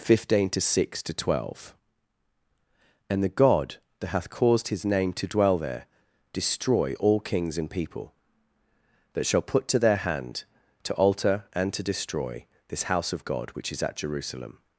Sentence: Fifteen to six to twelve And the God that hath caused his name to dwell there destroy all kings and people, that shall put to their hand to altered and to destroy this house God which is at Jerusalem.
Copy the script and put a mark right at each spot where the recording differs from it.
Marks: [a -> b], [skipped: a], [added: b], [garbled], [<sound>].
Fifteen to six to twelve And the God that hath caused his name to dwell there destroy all kings and people, that shall put to their hand to [altered -> alter] and to destroy this house [added: of] God which is at Jerusalem.